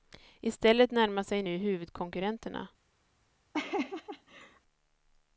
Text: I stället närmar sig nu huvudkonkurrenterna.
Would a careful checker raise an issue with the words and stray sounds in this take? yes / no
yes